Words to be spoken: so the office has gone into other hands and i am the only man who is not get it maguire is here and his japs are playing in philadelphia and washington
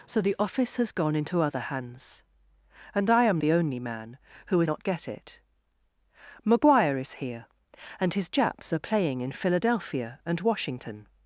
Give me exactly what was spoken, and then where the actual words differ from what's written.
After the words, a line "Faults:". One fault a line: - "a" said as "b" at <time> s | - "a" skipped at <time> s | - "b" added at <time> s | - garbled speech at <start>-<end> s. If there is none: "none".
so the office has gone into other hands and i am the only man who is not get it maguire is here and his japs are playing in philadelphia and washington
Faults:
none